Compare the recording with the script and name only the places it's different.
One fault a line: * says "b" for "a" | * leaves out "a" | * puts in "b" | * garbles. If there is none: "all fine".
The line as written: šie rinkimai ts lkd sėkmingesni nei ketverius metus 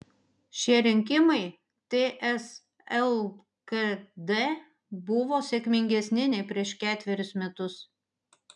* puts in "buvo"
* puts in "prieš"